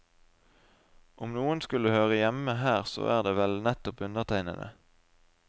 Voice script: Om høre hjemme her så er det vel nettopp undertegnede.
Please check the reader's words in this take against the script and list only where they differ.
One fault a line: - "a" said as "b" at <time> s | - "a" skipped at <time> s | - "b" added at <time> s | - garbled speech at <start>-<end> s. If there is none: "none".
- "noen skulle" added at 1.4 s